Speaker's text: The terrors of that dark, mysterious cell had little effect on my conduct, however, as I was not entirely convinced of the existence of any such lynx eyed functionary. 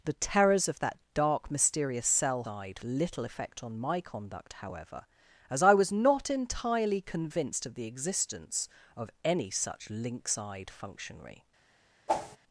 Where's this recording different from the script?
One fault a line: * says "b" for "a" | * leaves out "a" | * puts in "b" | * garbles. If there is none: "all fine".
* says "eyed" for "had"